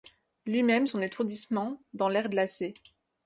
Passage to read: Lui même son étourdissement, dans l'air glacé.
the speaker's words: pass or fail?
pass